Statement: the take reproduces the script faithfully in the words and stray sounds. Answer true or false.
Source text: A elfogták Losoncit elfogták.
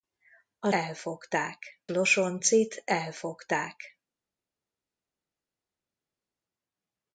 true